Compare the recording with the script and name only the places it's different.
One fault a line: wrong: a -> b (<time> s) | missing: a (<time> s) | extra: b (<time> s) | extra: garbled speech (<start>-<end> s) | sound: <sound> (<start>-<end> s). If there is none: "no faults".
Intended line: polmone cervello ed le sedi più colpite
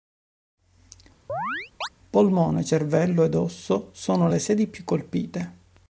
sound: chirp (1.3-1.9 s)
extra: osso sono (3.3 s)